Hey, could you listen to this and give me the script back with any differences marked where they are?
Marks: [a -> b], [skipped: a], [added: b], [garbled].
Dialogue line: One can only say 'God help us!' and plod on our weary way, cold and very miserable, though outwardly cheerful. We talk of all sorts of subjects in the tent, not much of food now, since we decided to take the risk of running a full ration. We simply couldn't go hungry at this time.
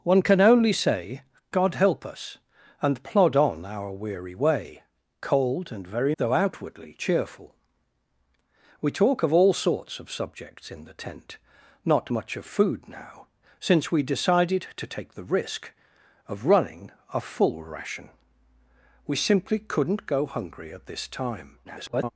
One can only say 'God help us!' and plod on our weary way, cold and very [skipped: miserable,] though outwardly cheerful. We talk of all sorts of subjects in the tent, not much of food now, since we decided to take the risk of running a full ration. We simply couldn't go hungry at this time. [garbled]